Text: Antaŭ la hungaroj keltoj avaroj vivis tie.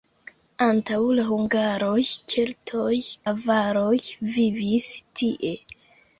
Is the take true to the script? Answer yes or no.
yes